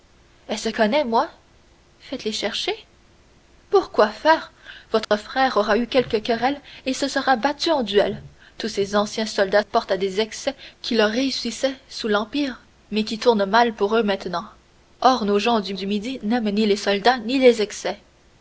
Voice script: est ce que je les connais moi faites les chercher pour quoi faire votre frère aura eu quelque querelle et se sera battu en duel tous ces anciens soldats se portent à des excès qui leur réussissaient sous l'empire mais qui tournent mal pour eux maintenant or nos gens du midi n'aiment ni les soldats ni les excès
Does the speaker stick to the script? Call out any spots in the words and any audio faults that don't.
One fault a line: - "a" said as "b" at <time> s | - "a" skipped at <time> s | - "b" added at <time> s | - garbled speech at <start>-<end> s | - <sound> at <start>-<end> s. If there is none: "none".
- "que je les" skipped at 0.7 s
- dropout at 5.0-5.1 s
- "se" skipped at 9.6 s
- "du" added at 15.7 s